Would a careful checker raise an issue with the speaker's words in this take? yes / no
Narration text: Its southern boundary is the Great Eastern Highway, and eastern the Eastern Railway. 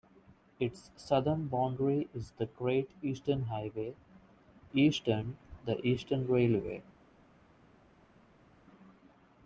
yes